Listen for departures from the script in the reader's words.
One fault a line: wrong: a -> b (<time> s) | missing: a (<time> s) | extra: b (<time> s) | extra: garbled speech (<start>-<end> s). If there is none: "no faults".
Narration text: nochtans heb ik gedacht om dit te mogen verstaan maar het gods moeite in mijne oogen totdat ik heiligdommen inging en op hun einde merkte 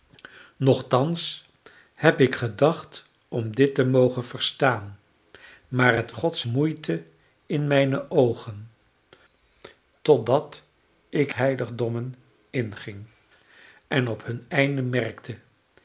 no faults